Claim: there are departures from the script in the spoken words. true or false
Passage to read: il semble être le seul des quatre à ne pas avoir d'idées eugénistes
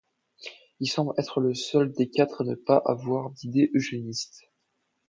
false